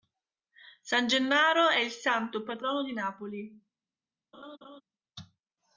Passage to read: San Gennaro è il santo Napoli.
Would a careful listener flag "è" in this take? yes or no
no